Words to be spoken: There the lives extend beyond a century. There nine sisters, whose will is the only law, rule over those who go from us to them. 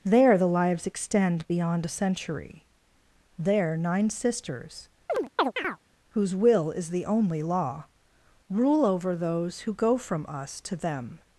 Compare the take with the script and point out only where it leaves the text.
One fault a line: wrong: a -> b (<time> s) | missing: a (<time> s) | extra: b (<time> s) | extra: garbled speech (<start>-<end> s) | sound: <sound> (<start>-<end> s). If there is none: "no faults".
sound: chirp (5.1-5.8 s)